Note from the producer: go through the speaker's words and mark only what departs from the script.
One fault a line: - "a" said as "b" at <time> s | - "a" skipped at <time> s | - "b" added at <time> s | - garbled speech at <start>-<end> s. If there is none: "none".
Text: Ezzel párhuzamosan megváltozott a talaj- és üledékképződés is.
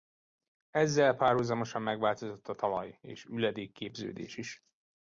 none